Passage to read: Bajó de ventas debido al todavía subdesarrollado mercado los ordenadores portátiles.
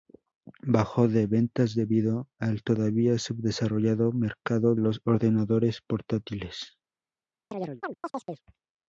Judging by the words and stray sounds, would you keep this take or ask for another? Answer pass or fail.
fail